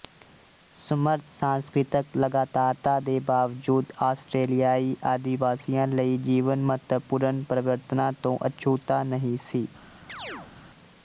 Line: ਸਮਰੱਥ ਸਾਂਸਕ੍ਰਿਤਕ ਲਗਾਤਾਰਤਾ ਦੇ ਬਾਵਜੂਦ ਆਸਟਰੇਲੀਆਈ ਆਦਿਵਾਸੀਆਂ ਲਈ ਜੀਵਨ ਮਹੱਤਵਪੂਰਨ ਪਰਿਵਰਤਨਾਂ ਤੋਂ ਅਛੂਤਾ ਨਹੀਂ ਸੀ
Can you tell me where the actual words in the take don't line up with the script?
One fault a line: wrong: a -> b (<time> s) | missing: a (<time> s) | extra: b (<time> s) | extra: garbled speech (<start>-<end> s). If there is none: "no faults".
no faults